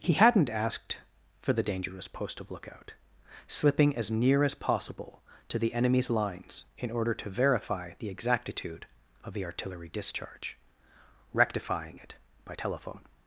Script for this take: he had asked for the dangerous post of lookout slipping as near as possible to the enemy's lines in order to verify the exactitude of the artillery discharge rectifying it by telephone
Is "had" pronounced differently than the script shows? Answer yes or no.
yes